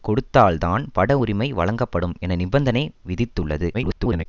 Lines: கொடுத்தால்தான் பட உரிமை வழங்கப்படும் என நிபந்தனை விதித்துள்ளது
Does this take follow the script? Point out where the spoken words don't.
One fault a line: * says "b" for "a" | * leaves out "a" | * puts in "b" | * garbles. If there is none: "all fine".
* garbles